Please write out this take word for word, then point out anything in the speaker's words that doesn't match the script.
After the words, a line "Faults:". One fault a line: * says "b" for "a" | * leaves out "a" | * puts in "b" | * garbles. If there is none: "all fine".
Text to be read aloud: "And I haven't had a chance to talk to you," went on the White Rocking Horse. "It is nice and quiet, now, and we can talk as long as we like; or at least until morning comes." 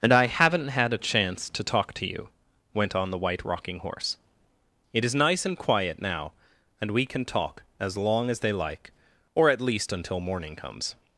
"And I haven't had a chance to talk to you," went on the White Rocking Horse. "It is nice and quiet, now, and we can talk as long as they like; or at least until morning comes."
Faults:
* says "they" for "we"